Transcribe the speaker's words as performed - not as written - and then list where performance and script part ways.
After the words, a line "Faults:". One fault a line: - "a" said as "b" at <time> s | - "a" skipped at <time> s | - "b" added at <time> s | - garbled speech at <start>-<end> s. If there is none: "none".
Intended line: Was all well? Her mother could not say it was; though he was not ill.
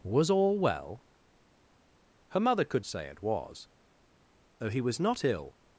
Was all well? Her mother could say it was; though he was not ill.
Faults:
- "not" skipped at 2.8 s